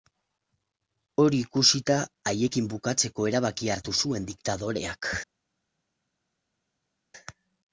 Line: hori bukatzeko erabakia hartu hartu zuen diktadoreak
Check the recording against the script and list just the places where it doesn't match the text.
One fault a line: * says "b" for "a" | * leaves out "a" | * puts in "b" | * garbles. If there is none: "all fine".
* puts in "ikusita haiekin"
* leaves out "hartu"